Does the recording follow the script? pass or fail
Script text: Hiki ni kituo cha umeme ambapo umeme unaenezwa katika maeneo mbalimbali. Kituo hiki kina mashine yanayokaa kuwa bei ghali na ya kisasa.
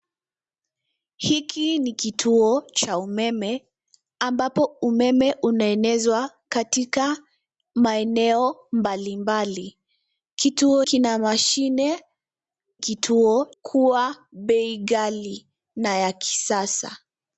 fail